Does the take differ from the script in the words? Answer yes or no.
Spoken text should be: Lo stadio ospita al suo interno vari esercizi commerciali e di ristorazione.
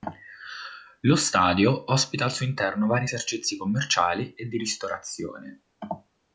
no